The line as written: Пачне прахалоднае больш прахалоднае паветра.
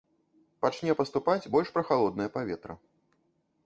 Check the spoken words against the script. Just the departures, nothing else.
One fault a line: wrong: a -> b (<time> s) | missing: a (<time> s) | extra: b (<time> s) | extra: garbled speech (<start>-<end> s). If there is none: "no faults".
wrong: прахалоднае -> паступаць (1.0 s)